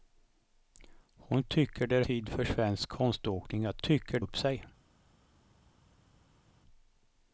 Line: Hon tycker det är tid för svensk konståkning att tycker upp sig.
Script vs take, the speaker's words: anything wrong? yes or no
no